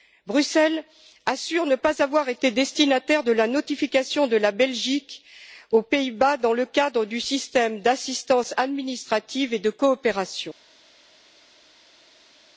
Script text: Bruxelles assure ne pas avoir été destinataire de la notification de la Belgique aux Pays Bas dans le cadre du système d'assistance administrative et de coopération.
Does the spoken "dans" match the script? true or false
true